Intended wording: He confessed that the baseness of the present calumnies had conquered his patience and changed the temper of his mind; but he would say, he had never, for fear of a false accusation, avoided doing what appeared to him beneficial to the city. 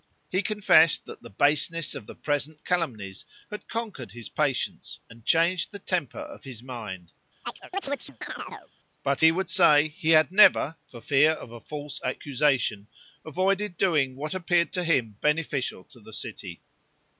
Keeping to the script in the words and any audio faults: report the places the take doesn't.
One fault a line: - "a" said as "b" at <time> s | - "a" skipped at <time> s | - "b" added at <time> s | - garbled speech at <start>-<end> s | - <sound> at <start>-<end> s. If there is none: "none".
- chirp at 7.4-8.7 s